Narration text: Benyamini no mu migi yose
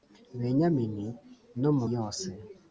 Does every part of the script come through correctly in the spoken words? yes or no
no